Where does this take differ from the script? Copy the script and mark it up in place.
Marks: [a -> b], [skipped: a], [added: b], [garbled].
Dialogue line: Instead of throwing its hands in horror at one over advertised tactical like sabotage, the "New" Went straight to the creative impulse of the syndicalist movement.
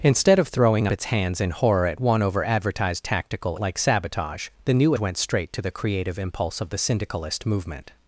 Instead of throwing its hands in horror at one over advertised tactical like sabotage, the "New" Went straight to the creative impulse of the syndicalist movement.